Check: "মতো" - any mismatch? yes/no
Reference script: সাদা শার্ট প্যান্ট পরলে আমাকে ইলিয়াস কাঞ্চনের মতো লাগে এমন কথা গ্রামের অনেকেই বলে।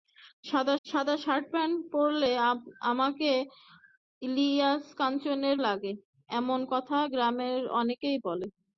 yes